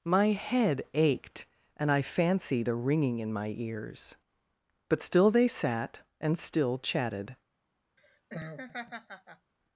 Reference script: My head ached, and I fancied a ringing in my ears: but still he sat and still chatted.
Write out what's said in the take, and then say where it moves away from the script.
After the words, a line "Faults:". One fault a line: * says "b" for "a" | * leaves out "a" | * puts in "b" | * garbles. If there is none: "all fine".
My head ached, and I fancied a ringing in my ears: but still they sat and still chatted.
Faults:
* says "they" for "he"